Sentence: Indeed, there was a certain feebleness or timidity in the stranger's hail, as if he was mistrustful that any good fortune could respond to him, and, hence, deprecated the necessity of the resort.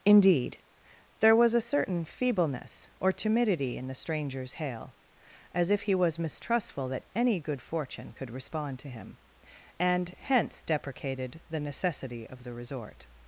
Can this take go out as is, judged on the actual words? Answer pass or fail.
pass